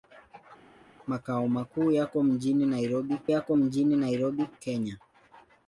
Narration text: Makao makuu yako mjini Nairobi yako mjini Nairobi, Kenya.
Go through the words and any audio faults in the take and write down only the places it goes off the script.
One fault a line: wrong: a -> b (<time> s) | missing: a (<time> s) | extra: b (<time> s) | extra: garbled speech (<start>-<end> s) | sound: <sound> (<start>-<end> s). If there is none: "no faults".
no faults